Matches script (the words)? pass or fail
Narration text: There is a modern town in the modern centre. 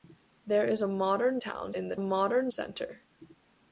pass